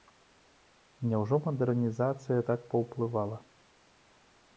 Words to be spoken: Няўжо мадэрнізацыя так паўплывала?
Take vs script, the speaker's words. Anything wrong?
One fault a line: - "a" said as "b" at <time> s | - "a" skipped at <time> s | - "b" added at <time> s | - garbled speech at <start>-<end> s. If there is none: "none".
none